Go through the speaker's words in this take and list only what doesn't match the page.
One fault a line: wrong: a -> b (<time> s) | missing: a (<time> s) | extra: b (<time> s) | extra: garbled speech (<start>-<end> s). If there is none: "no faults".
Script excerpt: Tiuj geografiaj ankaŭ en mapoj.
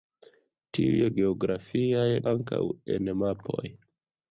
no faults